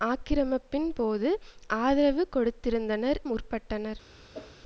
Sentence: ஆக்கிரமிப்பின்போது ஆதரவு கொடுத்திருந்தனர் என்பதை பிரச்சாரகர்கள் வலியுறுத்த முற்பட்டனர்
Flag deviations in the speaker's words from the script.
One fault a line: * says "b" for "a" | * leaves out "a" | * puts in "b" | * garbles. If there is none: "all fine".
* leaves out "என்பதை பிரச்சாரகர்கள் வலியுறுத்த"